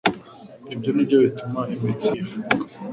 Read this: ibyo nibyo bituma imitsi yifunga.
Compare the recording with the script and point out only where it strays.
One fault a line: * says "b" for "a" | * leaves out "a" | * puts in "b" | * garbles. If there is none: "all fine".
all fine